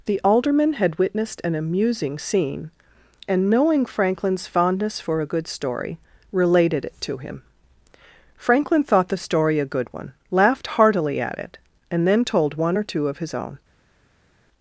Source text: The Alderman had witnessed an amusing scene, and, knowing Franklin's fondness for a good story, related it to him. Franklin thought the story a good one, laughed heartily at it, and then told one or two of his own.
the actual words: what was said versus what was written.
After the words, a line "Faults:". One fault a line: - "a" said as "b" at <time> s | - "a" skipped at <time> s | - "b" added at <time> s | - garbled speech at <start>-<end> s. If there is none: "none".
The Alderman had witnessed an amusing scene, and, knowing Franklin's fondness for a good story, related it to him. Franklin thought the story a good one, laughed heartily at it, and then told one or two of his own.
Faults:
none